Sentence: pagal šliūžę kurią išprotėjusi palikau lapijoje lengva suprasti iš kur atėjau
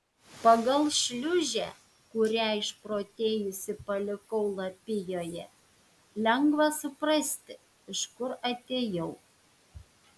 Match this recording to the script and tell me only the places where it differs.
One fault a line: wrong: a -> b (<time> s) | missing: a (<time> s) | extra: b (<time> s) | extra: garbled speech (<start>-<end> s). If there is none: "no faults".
no faults